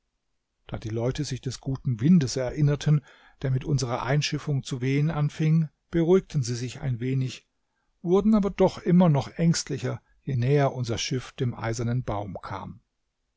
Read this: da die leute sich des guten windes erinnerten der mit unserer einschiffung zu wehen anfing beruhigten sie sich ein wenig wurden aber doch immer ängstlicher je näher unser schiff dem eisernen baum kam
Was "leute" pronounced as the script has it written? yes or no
yes